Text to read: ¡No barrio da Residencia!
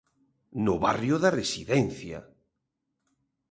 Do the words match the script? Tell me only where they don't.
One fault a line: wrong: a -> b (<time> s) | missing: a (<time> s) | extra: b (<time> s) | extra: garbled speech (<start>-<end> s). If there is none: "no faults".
no faults